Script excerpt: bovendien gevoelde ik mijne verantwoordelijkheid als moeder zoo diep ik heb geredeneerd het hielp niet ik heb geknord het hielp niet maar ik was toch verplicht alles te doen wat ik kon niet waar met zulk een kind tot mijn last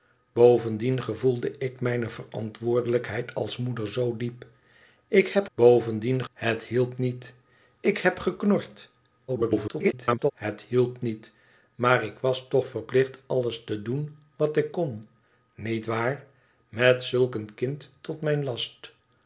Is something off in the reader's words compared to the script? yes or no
yes